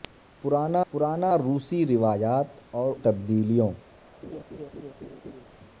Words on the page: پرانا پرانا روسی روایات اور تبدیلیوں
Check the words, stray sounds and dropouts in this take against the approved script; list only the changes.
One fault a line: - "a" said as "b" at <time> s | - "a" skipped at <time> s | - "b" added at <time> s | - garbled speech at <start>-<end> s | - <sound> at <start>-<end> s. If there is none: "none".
- laugh at 4.2-5.5 s